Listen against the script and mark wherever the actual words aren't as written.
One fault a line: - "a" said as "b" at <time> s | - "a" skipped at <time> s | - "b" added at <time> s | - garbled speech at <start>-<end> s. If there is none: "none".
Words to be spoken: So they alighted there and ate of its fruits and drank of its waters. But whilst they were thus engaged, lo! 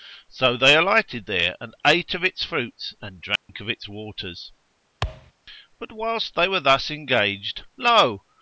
none